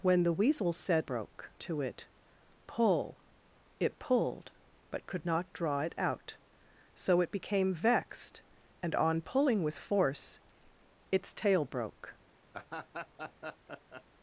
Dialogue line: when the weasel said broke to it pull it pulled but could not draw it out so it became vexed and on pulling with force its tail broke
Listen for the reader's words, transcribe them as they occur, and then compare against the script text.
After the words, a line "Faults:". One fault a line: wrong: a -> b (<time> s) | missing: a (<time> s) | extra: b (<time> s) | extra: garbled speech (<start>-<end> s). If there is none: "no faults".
when the weasel said broke to it pull it pulled but could not draw it out so it became vexed and on pulling with force its tail broke
Faults:
no faults